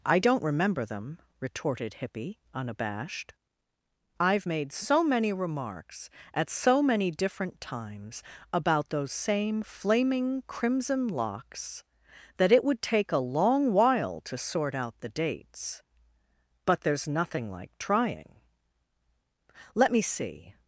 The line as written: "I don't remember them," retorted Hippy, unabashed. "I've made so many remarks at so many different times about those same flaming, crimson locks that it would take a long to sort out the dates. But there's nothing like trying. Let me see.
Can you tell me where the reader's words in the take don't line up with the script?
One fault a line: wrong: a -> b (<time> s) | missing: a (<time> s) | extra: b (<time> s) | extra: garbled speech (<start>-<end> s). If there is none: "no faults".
extra: while (13.7 s)